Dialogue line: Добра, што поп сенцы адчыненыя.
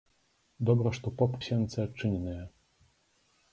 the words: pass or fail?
pass